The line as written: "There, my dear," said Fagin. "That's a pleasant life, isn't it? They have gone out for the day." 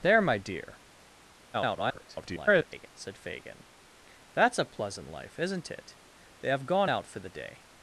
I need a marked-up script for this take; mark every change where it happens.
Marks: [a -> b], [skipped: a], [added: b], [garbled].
"There, my dear," [garbled] said Fagin. "That's a pleasant life, isn't it? They have gone out for the day."